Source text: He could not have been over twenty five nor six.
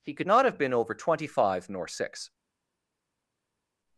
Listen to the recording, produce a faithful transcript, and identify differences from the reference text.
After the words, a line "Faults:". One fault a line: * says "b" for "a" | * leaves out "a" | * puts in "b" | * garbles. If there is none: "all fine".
He could not have been over twenty five nor six.
Faults:
all fine